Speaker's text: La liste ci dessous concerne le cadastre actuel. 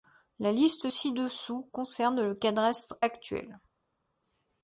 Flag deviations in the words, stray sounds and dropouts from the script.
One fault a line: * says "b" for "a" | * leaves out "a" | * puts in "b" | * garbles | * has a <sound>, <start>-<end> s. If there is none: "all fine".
all fine